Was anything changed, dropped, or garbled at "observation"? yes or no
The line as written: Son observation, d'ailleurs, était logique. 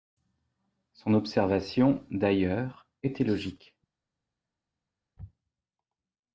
no